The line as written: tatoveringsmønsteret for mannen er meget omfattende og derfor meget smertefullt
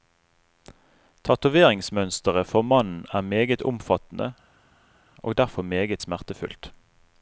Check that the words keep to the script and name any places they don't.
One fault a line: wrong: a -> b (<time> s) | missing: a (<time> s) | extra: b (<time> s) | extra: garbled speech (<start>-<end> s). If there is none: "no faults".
no faults